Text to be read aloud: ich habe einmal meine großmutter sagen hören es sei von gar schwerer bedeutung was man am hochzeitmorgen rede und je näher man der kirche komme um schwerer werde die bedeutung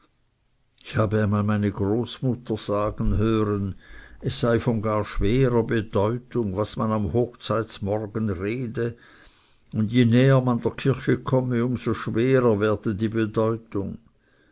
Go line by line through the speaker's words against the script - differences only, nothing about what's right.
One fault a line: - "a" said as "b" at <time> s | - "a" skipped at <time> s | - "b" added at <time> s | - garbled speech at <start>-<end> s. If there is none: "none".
- "so" added at 11.8 s